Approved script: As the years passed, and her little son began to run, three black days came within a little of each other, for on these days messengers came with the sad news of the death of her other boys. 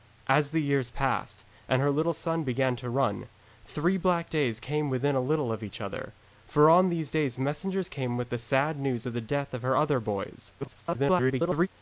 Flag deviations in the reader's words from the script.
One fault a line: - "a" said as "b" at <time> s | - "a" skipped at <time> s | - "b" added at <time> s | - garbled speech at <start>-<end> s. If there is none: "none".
- garbled speech at 10.6-11.7 s